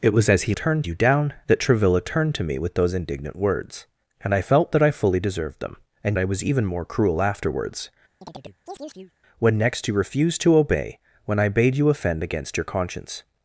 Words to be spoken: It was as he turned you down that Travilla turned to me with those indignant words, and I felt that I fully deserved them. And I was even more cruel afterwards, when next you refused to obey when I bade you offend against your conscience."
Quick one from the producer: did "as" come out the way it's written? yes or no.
yes